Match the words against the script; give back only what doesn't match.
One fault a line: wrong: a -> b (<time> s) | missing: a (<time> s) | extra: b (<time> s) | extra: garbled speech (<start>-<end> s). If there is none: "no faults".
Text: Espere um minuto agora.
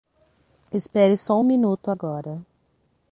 extra: só (1.1 s)